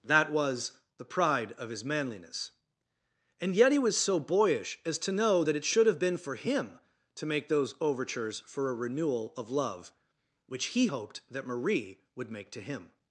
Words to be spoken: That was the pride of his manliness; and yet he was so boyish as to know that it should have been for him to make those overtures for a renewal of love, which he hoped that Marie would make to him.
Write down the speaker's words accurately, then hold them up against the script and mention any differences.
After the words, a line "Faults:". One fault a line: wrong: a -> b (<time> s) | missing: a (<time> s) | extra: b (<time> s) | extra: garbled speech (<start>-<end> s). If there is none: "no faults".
That was the pride of his manliness; and yet he was so boyish as to know that it should have been for him to make those overtures for a renewal of love, which he hoped that Marie would make to him.
Faults:
no faults